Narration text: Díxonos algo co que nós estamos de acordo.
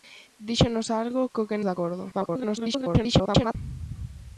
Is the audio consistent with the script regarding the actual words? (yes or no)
no